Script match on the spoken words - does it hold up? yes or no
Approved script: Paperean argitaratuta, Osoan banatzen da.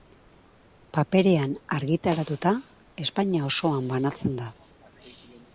no